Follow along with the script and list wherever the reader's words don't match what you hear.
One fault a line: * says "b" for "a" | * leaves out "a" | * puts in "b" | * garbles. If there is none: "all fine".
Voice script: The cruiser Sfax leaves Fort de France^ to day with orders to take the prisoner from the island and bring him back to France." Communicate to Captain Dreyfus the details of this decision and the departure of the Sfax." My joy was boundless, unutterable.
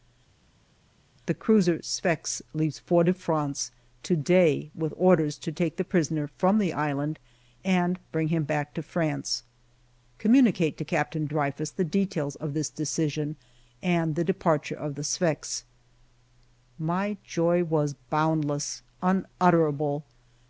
all fine